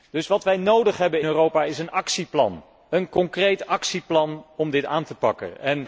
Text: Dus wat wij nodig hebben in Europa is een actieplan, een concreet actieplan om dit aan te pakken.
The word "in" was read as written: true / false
false